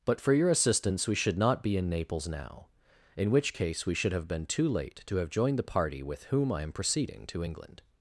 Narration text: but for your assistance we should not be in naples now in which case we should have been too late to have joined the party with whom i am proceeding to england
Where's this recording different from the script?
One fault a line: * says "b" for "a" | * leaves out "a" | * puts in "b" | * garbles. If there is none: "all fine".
all fine